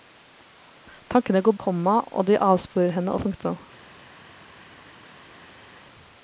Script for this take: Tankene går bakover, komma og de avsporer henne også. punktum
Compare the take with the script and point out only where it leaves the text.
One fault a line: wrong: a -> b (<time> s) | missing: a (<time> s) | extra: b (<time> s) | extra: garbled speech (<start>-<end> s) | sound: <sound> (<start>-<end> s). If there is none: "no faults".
missing: bakover (1.6 s)
missing: også (3.2 s)